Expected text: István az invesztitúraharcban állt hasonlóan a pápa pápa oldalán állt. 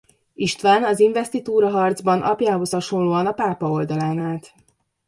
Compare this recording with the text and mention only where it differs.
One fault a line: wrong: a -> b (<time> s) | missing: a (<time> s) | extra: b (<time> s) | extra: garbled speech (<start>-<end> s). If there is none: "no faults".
wrong: állt -> apjához (2.2 s)
missing: pápa (3.7 s)